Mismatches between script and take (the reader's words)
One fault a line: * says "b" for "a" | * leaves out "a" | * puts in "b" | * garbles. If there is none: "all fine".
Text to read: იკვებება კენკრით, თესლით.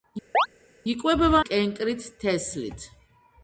all fine